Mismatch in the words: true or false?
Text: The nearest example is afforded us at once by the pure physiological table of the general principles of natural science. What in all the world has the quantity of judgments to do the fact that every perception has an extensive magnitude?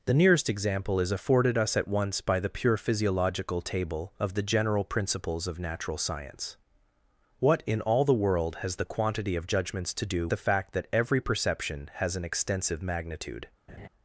false